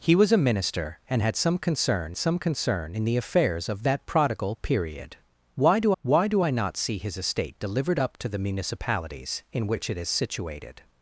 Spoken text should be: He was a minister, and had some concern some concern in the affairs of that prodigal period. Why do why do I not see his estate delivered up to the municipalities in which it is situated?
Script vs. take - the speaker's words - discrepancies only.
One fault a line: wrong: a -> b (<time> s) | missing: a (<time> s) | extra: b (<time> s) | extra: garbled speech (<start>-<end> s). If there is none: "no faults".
no faults